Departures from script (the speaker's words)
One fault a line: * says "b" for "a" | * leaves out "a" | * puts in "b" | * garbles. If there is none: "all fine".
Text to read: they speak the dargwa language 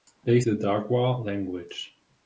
* leaves out "speak"